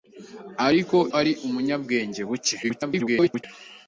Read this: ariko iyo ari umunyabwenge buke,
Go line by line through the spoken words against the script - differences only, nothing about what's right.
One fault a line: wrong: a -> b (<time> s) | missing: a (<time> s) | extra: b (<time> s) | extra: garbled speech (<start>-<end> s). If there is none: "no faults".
missing: iyo (1.0 s)
extra: garbled speech (2.6-3.4 s)